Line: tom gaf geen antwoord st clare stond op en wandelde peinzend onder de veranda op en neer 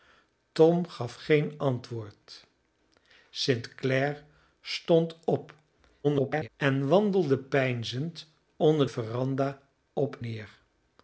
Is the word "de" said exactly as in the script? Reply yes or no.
no